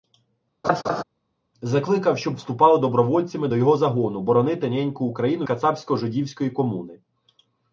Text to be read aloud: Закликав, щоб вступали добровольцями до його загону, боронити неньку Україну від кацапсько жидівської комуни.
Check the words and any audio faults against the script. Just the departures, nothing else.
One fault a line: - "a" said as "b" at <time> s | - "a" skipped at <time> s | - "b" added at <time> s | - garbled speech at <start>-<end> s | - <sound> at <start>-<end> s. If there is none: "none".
- laugh at 0.6-1.0 s
- "від" skipped at 5.5 s